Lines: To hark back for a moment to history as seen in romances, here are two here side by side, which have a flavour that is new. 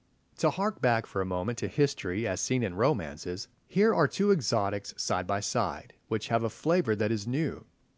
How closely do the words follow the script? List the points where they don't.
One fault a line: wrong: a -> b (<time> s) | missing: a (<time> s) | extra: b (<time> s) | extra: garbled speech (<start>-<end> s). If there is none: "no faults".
wrong: here -> exotics (4.3 s)